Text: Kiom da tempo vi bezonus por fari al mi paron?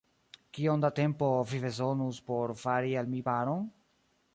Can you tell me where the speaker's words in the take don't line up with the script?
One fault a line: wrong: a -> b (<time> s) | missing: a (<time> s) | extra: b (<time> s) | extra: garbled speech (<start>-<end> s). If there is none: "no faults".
no faults